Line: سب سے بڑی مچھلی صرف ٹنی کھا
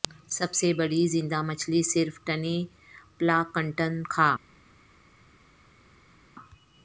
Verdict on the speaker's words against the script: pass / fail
fail